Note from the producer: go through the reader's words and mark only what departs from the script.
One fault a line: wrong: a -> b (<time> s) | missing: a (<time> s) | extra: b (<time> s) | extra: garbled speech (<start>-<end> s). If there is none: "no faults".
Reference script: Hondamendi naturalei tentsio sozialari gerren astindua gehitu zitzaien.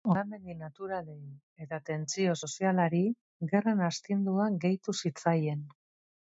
extra: eta (1.6 s)